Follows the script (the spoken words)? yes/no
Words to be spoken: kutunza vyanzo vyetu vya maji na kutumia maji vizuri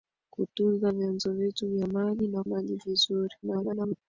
no